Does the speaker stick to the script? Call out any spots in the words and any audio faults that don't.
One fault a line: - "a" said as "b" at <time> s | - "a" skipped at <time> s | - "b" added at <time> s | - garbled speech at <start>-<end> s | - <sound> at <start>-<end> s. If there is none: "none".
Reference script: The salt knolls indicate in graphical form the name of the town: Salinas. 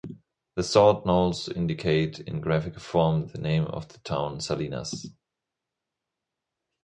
none